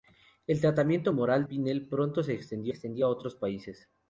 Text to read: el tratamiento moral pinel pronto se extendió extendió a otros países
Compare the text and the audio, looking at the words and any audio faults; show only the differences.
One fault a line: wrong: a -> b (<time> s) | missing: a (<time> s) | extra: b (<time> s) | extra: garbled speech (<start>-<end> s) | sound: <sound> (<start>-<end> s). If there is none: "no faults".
no faults